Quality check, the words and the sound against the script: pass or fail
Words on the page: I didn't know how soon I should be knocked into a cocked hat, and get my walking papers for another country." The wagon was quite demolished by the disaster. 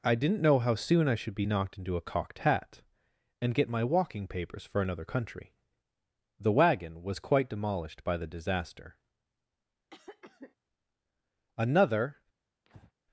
fail